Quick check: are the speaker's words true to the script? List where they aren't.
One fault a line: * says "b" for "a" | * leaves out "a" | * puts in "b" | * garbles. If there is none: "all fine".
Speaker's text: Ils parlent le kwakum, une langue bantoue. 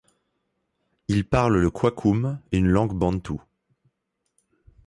all fine